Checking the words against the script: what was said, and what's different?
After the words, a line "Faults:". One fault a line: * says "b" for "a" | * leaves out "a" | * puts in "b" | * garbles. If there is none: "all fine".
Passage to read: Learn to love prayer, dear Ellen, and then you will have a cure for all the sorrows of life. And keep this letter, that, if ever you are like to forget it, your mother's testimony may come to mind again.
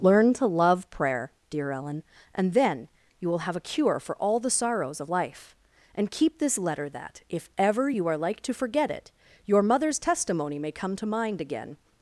Learn to love prayer, dear Ellen, and then you will have a cure for all the sorrows of life. And keep this letter, that, if ever you are like to forget it, your mother's testimony may come to mind again.
Faults:
all fine